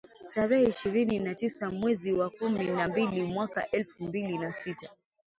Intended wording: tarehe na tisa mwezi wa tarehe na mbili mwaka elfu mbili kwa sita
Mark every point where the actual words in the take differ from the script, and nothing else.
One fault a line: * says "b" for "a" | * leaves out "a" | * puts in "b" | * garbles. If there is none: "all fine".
* puts in "ishirini"
* says "kumi" for "tarehe"
* says "na" for "kwa"